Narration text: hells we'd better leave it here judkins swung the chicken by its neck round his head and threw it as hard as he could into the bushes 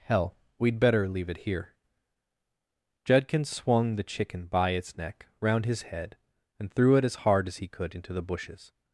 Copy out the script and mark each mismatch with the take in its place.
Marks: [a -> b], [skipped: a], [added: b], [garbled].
[hells -> hell] we'd better leave it here judkins swung the chicken by its neck round his head and threw it as hard as he could into the bushes